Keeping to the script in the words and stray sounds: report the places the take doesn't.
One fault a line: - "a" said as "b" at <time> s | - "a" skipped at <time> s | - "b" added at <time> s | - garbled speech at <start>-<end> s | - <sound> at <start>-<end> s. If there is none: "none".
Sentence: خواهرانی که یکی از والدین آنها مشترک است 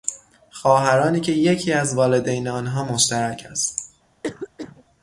- cough at 4.2-4.8 s